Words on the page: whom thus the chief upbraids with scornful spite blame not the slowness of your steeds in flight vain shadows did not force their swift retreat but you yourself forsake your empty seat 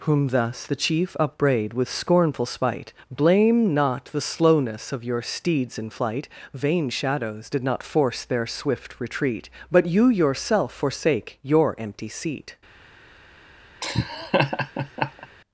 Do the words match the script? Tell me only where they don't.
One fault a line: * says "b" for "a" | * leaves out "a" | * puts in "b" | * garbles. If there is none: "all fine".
* says "upbraid" for "upbraids"